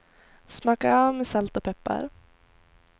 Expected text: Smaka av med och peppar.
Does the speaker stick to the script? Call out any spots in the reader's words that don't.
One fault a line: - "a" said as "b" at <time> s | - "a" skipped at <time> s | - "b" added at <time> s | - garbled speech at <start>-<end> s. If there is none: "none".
- "salt" added at 1.3 s